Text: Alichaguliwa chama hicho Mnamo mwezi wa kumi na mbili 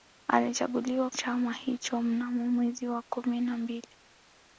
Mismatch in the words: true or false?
false